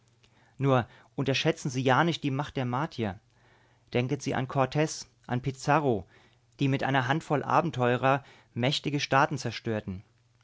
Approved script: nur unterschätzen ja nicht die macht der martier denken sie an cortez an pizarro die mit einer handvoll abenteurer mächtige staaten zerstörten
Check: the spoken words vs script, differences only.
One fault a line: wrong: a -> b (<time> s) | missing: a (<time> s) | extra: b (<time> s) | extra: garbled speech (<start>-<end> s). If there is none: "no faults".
extra: sie (1.7 s)